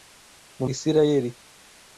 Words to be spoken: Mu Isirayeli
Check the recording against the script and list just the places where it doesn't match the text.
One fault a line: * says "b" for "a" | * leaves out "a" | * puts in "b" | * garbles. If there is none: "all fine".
all fine